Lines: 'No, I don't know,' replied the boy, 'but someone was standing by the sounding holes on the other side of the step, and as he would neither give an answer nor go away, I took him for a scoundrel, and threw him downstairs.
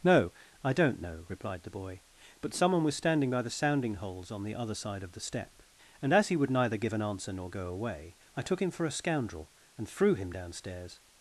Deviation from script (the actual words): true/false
false